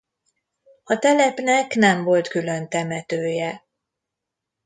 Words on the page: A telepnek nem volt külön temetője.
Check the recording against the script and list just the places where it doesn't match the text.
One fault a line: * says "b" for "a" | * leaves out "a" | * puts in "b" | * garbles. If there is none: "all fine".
all fine